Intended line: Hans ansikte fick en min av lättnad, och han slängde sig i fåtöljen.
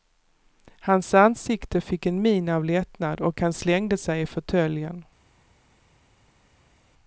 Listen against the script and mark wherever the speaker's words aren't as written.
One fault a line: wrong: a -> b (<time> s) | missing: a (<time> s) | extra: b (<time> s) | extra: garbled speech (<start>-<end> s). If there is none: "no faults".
no faults